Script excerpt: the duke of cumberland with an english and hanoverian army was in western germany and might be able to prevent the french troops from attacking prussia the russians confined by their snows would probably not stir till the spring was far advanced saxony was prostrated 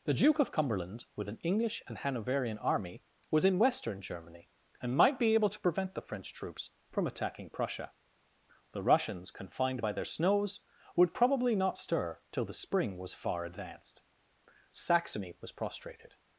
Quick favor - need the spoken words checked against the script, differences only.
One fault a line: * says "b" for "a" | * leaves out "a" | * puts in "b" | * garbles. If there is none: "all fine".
all fine